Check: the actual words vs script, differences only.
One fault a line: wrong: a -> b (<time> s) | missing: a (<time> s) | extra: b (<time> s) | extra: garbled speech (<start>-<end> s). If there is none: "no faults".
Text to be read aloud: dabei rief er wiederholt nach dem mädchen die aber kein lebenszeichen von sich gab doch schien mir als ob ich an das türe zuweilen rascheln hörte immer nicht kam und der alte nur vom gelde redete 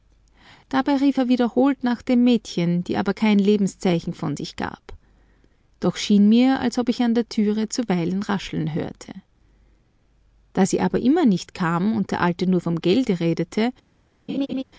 wrong: das -> der (7.1 s)
extra: da sie aber (10.5 s)